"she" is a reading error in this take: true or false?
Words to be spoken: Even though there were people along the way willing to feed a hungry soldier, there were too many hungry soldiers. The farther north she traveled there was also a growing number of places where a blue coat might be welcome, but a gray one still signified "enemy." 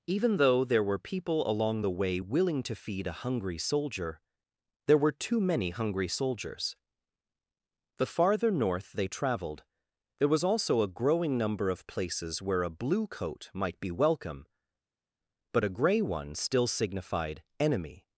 true